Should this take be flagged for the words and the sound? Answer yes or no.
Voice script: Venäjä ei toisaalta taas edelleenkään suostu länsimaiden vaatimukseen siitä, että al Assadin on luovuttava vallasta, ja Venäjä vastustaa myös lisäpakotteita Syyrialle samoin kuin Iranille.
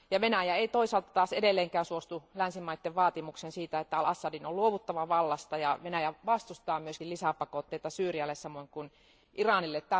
no